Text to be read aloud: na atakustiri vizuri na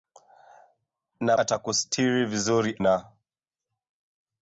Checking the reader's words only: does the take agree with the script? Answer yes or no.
yes